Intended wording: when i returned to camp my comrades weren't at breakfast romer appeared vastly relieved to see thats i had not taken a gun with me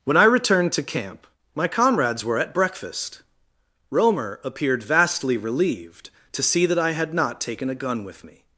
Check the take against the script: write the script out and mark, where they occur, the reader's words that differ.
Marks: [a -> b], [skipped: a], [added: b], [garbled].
when i returned to camp my comrades [weren't -> were] at breakfast romer appeared vastly relieved to see [thats -> that] i had not taken a gun with me